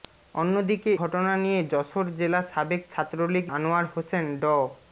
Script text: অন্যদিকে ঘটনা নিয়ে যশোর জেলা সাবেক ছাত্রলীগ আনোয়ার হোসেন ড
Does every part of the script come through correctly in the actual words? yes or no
yes